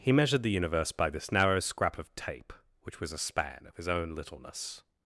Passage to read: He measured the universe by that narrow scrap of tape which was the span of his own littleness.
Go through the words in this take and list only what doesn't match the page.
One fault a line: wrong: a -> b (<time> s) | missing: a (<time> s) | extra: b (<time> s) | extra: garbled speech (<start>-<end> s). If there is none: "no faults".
wrong: that -> this (1.1 s)
wrong: the -> a (3.1 s)